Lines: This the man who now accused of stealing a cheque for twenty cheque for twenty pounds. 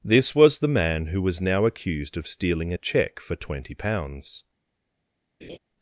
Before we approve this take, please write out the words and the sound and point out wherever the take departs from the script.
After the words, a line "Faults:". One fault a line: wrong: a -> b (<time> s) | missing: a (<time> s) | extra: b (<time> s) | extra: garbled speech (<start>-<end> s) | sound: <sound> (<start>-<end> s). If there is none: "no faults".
This was the man who was now accused of stealing a cheque for twenty pounds.
Faults:
extra: was (0.3 s)
extra: was (1.2 s)
missing: cheque for twenty (3.7 s)
sound: laugh (5.4-5.6 s)